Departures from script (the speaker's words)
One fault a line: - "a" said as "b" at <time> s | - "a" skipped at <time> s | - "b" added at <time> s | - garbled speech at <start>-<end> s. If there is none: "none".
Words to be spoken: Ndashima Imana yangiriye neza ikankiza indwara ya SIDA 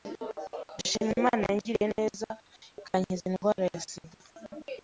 none